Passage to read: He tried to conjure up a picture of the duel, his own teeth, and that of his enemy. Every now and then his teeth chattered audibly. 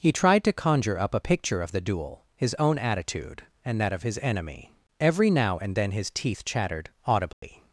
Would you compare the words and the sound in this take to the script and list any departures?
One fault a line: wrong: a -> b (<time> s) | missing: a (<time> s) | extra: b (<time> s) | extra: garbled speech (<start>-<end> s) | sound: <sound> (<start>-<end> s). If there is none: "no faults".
wrong: teeth -> attitude (2.8 s)
sound: dropout (7.3-7.4 s)